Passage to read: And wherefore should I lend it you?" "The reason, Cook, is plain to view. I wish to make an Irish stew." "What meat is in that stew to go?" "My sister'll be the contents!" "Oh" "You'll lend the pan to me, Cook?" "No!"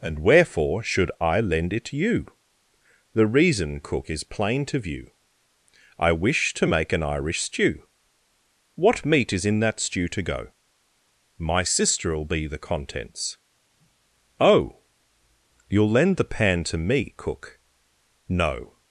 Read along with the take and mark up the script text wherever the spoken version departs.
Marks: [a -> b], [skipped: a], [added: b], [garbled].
And wherefore should I lend it you?" "The reason, Cook, is plain to view. I wish to make an Irish stew." "What meat is in that stew to go?" "My sister'll be the contents!" "Oh" "You'll lend the pan to me, Cook?" "No!"